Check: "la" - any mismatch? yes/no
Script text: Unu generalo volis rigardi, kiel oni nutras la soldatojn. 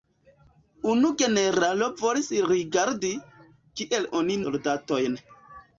yes